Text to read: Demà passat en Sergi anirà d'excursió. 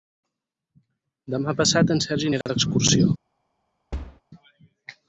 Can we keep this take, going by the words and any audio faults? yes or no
no